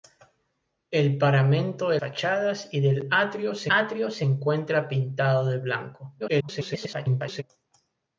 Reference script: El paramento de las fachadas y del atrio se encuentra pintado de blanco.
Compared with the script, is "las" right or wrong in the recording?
wrong